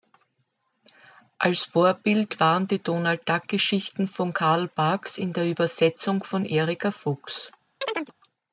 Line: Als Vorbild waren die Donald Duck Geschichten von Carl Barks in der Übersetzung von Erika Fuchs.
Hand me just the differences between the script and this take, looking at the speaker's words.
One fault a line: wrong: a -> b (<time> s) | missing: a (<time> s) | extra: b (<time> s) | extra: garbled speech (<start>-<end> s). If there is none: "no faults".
no faults